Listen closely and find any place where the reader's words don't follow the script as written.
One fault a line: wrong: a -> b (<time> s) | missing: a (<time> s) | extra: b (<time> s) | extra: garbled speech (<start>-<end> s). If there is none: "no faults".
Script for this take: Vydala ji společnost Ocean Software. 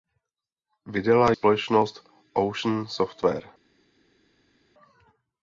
missing: ji (1.3 s)